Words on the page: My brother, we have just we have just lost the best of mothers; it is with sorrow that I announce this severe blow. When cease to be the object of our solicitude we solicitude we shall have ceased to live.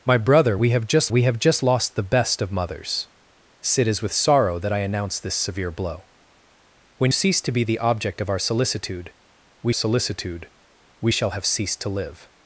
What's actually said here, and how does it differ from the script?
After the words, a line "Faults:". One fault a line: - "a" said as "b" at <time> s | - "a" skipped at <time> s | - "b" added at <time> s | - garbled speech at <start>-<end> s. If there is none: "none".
My brother, we have just we have just lost the best of mothers; it is with sorrow that I announce this severe blow. When cease to be the object of our solicitude we solicitude we shall have ceased to live.
Faults:
none